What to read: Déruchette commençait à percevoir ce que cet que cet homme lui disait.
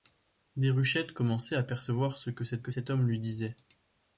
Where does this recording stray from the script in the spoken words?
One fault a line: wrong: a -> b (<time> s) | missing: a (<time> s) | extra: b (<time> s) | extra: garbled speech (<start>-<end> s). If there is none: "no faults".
no faults